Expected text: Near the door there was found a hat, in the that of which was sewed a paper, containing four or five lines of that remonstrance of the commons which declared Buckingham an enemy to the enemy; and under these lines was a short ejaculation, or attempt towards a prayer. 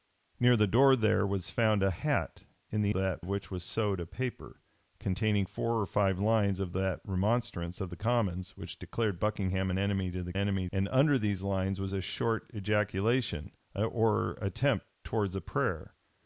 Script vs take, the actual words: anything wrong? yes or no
no